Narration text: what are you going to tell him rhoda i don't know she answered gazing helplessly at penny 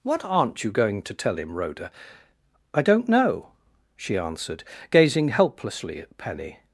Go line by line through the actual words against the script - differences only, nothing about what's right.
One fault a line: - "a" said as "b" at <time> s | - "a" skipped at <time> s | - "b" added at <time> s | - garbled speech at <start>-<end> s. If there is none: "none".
- "are" said as "aren't" at 0.2 s